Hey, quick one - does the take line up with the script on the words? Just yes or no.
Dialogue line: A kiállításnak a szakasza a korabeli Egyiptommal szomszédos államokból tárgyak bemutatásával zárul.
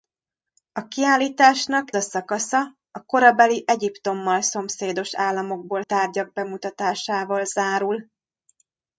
yes